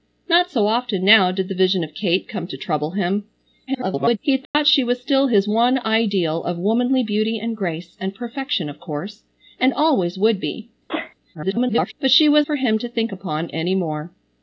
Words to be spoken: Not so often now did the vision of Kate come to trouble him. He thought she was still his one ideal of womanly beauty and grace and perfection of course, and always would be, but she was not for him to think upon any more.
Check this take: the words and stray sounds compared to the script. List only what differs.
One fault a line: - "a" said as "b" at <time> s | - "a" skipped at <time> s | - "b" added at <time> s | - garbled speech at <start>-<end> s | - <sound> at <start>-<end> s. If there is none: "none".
- garbled speech at 3.7-4.2 s
- dropout at 4.5-4.5 s
- sneeze at 10.9-11.2 s
- garbled speech at 11.3-11.9 s
- "not" skipped at 12.5 s